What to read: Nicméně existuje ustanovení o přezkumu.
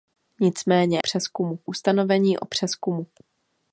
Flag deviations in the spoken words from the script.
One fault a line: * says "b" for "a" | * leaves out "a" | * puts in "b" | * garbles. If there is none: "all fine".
* says "přezkumu" for "existuje"